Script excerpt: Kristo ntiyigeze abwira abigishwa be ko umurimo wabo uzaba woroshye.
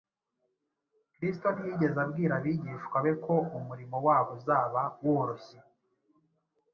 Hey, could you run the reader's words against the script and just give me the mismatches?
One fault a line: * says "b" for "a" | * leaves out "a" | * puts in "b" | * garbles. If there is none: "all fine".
all fine